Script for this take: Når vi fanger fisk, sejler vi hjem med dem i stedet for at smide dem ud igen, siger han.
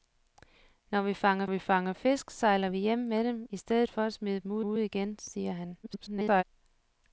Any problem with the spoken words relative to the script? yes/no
yes